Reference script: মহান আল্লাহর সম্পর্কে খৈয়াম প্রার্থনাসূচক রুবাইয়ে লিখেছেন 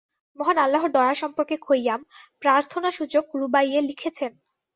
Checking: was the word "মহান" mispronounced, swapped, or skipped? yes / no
no